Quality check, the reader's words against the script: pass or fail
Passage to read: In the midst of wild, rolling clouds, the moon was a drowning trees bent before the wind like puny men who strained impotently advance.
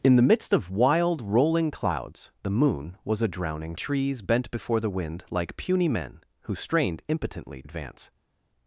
pass